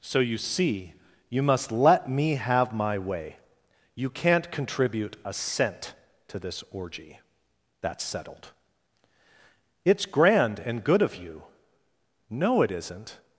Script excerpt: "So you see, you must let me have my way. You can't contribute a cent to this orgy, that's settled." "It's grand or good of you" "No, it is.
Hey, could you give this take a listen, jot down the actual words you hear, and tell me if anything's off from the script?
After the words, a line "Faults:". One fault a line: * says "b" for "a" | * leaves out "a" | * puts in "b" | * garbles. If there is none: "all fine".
"So you see, you must let me have my way. You can't contribute a cent to this orgy, that's settled." "It's grand and good of you" "No, it isn't.
Faults:
* says "and" for "or"
* says "isn't" for "is"